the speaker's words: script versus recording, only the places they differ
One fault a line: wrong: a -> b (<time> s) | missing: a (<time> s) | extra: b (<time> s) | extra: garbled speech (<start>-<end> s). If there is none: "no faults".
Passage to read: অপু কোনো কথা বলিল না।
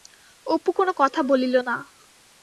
no faults